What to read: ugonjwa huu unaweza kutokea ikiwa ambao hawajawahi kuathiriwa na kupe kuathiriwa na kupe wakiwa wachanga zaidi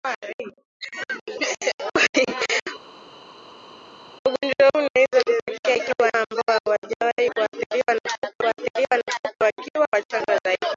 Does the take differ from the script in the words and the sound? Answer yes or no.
no